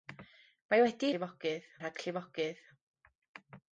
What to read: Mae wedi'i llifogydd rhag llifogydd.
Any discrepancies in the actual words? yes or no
no